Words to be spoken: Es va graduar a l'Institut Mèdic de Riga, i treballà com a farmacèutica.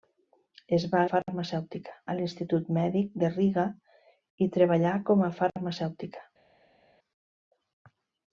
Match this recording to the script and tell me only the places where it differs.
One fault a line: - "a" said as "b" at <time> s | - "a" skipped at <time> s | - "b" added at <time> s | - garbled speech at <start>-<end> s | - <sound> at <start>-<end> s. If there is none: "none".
- "graduar" said as "farmacèutica" at 1.1 s